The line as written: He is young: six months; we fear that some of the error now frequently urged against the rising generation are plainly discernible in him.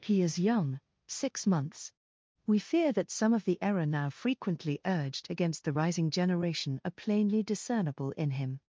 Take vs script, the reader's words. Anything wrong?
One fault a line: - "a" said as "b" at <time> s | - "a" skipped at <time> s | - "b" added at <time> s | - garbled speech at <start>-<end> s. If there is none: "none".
none